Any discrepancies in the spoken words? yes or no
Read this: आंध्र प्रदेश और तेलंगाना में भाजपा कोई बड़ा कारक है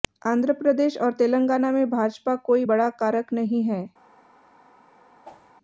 yes